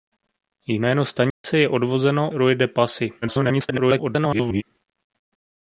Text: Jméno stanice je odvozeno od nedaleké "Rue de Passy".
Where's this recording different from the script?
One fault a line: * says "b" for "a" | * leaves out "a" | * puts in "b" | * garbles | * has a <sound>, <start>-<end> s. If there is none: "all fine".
* has a dropout, 1.3-1.4 s
* leaves out "od nedaleké"
* garbles